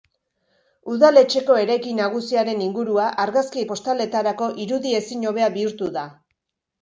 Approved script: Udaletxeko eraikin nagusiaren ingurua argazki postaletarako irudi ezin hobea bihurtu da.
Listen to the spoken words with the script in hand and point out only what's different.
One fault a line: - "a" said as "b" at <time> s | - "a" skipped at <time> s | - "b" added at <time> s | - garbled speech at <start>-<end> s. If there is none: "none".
none